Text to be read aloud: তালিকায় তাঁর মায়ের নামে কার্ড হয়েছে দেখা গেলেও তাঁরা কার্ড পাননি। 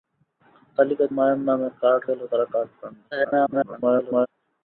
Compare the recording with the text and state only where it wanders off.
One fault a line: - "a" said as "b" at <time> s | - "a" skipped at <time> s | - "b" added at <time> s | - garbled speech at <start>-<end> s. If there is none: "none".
- "তাঁর" skipped at 1.1 s
- "হয়েছে দেখা" skipped at 2.0 s
- garbled speech at 3.1-4.3 s